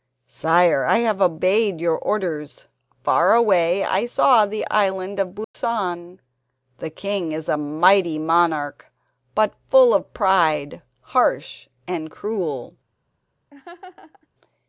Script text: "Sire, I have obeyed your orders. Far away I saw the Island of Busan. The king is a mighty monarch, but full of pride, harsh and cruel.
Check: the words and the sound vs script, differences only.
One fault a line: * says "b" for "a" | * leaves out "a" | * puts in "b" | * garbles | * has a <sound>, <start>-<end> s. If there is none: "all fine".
* has a dropout, 5.4-5.5 s
* has a laugh, 13.5-14.3 s